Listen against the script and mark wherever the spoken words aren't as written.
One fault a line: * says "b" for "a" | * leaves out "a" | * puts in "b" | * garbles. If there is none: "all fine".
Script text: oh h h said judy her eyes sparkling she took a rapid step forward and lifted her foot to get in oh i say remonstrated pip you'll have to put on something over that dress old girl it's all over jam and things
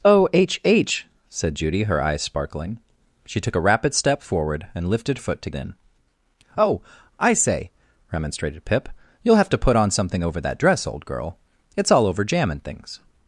* leaves out "her"
* leaves out "get"